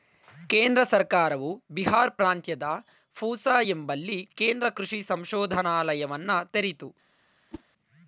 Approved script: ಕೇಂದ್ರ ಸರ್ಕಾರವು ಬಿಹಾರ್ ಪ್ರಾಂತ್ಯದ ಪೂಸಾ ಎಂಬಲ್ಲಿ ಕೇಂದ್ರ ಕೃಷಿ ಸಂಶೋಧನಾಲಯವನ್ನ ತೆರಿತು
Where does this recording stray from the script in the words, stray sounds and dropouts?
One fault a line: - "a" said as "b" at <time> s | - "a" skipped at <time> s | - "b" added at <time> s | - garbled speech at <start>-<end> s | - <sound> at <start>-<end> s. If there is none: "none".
- whoosh at 7.5-7.6 s